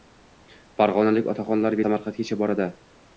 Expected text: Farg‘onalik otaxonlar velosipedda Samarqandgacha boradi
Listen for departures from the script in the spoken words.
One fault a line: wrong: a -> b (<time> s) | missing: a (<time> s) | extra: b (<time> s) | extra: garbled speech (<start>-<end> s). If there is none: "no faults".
missing: velosipedda (1.8 s)